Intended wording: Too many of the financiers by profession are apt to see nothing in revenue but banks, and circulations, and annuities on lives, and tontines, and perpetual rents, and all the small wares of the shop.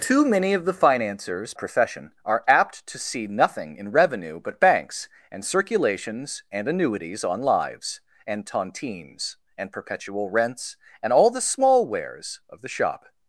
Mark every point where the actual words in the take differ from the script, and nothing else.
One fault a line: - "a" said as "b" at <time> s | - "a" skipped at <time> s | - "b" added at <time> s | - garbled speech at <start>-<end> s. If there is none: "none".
- "by" skipped at 1.5 s